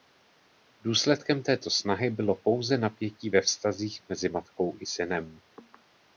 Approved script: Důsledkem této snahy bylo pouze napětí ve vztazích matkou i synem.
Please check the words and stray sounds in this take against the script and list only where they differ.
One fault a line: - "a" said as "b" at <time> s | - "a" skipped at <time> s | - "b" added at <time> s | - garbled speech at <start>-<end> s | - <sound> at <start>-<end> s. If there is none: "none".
- "mezi" added at 4.1 s